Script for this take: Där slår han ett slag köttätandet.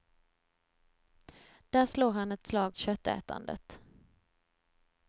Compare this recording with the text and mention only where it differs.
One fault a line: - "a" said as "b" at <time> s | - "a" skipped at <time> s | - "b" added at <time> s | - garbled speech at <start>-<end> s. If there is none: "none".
none